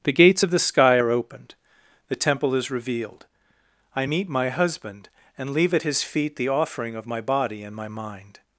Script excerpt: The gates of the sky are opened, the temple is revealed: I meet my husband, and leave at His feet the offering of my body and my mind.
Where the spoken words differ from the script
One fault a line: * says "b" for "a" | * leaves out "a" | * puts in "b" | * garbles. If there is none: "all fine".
all fine